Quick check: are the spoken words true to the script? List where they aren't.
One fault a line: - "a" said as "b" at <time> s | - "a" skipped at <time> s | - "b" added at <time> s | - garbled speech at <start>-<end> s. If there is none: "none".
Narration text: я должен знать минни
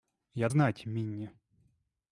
- "должен" skipped at 0.5 s